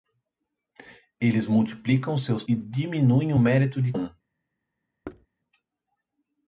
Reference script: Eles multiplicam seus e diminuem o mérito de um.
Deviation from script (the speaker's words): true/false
false